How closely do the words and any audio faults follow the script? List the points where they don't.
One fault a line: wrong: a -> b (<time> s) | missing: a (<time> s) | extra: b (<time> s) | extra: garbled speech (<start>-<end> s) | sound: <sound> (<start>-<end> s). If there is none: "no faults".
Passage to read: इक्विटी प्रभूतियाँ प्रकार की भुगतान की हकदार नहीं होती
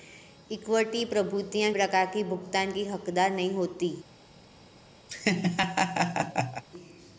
sound: laugh (5.1-6.6 s)